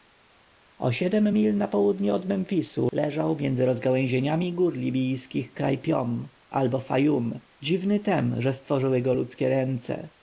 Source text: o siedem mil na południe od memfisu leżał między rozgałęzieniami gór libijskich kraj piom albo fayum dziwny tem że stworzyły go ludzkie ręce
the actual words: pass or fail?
pass